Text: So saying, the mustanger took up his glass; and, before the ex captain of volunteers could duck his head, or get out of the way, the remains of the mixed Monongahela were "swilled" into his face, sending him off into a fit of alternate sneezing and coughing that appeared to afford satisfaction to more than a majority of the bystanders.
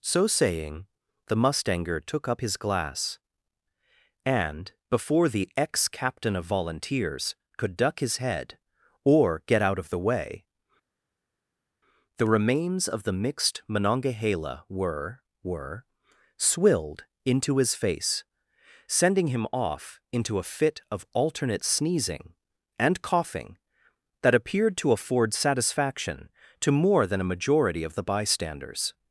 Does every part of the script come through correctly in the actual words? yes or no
no